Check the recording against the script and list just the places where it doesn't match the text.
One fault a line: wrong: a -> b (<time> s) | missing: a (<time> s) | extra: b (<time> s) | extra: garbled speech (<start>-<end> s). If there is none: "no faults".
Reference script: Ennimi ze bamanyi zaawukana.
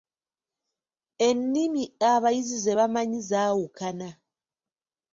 extra: abayizi (2.1 s)